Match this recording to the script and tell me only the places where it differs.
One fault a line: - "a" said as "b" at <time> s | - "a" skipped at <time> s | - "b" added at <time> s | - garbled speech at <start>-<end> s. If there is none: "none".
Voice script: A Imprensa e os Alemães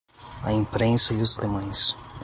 none